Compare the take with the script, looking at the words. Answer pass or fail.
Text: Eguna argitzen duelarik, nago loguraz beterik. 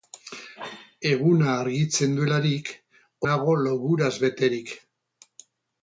pass